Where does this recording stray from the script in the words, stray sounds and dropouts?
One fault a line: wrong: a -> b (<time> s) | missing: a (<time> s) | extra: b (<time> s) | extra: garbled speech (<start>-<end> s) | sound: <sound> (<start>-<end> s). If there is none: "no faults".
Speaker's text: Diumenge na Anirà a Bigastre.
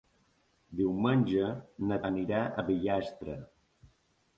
no faults